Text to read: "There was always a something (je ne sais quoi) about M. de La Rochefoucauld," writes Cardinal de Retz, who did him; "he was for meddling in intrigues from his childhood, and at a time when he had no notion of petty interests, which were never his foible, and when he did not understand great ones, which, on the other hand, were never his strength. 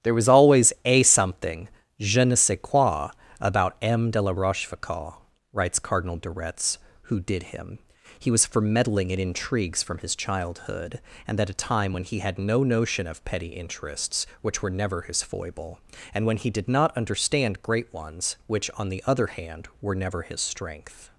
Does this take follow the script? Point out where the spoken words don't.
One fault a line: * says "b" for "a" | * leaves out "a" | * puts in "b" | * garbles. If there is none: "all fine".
all fine